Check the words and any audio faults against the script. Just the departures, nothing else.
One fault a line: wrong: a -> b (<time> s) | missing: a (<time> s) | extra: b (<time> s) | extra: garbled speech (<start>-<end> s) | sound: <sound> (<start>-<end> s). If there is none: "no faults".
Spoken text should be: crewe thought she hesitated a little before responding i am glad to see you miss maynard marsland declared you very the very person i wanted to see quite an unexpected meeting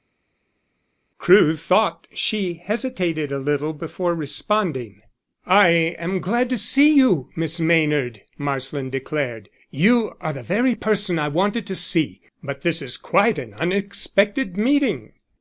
wrong: very -> are (10.2 s)
extra: but this is (12.4 s)